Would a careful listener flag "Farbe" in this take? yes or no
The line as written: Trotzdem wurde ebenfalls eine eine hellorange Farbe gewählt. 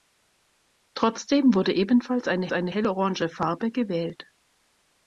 no